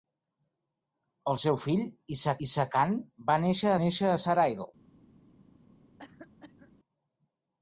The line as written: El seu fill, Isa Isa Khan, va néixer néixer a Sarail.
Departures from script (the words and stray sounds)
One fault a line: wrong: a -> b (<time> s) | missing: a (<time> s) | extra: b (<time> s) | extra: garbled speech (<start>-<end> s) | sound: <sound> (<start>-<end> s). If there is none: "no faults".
sound: cough (6.0-6.7 s)